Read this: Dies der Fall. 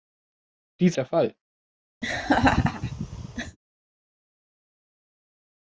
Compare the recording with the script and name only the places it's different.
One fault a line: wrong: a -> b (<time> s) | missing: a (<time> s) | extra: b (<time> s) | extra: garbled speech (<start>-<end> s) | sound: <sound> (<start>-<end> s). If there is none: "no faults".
sound: laugh (2.0-3.6 s)